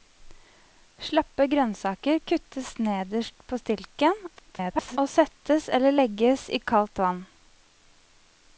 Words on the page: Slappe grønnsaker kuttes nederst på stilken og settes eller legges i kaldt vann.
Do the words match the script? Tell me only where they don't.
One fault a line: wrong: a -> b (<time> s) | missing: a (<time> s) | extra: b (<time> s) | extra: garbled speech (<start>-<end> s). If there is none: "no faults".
extra: garbled speech (4.4-5.0 s)